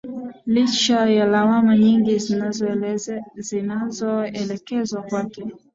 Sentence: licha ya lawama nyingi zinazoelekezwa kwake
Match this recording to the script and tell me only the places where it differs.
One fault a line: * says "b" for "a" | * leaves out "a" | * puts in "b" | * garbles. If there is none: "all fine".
all fine